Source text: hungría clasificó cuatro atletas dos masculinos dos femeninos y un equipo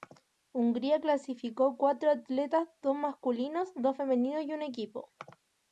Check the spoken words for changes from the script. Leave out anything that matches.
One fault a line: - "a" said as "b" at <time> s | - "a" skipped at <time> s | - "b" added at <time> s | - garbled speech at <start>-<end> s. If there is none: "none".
none